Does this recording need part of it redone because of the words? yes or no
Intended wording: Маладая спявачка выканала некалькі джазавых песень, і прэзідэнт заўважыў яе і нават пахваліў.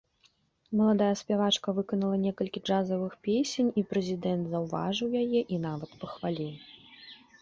no